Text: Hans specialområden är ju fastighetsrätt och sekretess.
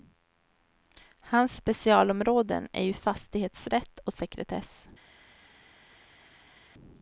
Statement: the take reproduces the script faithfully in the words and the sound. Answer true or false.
true